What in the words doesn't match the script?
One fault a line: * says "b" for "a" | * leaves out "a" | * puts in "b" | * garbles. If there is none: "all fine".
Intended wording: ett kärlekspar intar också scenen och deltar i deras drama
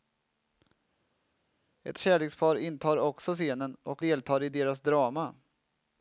all fine